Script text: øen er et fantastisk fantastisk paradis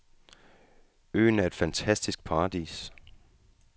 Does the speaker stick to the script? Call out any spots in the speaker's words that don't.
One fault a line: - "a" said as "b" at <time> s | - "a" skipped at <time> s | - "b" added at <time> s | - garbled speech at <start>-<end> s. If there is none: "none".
- "fantastisk" skipped at 2.2 s